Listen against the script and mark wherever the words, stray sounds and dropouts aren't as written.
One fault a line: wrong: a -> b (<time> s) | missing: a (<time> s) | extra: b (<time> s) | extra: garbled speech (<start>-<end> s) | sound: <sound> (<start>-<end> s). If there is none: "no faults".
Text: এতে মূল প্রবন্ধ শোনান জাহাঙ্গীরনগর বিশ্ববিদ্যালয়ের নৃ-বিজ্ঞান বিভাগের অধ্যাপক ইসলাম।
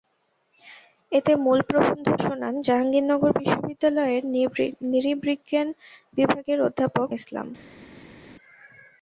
no faults